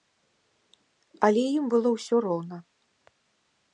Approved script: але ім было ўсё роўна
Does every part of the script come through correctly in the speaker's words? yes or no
yes